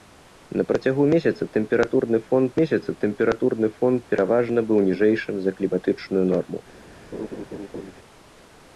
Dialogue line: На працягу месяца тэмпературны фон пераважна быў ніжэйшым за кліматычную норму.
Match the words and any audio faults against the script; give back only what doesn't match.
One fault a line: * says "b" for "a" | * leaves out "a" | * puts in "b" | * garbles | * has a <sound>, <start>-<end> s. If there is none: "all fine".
* puts in "месяца тэмпературны фон"
* has a laugh, 7.1-7.9 s